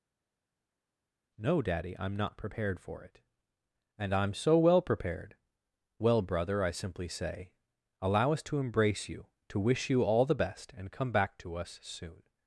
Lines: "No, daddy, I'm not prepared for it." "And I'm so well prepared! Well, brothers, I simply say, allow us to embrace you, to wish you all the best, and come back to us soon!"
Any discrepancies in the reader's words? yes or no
yes